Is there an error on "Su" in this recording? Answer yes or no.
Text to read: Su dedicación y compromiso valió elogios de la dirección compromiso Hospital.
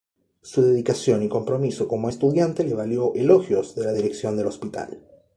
no